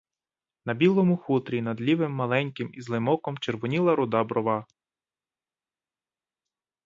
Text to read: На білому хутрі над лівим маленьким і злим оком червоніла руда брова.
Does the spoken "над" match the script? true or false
true